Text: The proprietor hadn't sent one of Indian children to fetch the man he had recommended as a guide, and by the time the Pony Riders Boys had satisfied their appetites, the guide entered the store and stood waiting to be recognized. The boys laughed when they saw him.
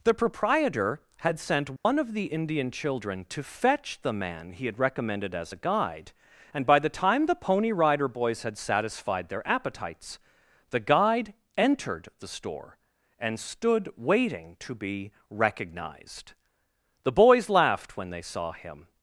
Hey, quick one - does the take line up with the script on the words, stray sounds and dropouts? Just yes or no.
no